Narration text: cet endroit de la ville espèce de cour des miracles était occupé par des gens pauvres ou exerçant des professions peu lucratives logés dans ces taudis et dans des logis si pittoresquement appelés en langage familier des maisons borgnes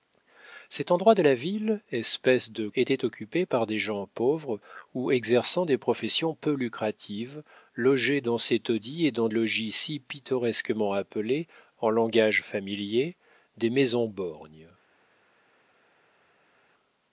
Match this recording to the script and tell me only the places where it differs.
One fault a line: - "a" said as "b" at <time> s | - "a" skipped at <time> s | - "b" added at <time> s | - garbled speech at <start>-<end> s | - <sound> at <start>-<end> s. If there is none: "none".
- "cour des miracles" skipped at 2.7 s
- "des" skipped at 9.3 s